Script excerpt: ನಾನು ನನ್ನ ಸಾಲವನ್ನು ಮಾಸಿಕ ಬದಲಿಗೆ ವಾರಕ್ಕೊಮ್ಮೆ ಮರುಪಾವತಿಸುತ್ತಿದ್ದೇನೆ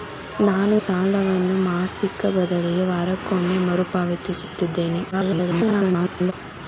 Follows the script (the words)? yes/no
no